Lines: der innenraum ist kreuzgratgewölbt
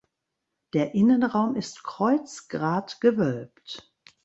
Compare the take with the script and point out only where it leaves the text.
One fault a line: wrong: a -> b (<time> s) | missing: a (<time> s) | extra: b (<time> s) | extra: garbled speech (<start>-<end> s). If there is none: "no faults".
no faults